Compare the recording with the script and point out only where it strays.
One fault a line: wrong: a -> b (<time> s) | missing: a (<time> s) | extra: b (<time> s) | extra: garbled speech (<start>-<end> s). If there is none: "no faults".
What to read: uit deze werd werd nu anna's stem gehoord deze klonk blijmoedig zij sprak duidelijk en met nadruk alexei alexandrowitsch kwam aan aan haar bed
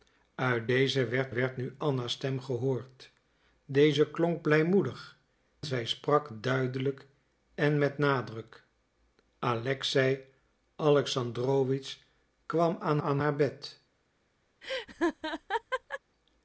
no faults